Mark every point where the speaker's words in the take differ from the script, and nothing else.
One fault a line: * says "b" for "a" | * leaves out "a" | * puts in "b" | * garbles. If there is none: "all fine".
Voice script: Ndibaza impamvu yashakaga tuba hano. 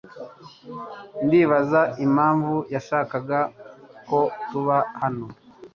* puts in "ko"